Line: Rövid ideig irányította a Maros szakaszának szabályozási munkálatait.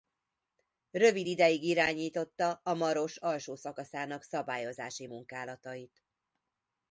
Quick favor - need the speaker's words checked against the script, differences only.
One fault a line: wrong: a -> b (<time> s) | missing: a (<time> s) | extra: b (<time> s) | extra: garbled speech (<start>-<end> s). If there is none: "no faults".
extra: alsó (3.2 s)